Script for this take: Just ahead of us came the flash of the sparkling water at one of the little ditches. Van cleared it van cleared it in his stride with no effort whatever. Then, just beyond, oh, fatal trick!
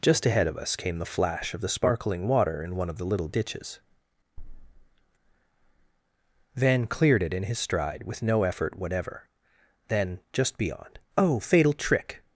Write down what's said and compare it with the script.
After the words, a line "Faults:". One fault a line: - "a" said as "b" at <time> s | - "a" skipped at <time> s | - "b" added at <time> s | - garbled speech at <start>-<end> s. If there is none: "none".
Just ahead of us came the flash of the sparkling water in one of the little ditches. Van cleared it in his stride with no effort whatever. Then, just beyond, oh, fatal trick!
Faults:
- "at" said as "in" at 2.6 s
- "van cleared it" skipped at 7.3 s